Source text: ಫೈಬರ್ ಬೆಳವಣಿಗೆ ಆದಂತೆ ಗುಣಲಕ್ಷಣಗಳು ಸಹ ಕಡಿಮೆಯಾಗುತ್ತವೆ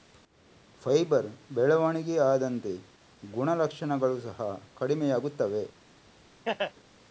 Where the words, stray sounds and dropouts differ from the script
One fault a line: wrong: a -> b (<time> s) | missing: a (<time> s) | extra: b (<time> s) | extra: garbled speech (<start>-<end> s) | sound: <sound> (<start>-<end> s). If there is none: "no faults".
sound: laugh (6.4-6.7 s)